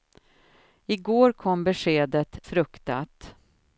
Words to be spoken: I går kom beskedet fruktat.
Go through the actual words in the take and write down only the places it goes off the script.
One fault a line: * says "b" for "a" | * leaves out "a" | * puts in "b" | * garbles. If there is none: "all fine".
all fine